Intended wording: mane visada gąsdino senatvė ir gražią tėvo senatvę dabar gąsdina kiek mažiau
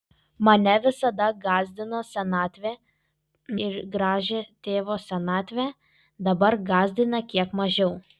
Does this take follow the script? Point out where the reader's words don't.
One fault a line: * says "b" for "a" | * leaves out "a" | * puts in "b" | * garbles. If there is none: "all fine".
all fine